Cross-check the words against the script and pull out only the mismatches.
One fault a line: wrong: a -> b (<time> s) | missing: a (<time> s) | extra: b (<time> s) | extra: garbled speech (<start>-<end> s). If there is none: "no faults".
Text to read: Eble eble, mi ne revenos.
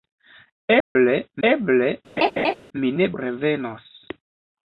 no faults